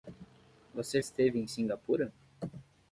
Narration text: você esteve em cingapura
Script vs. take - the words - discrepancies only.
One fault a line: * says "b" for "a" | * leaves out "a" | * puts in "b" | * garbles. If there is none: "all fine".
all fine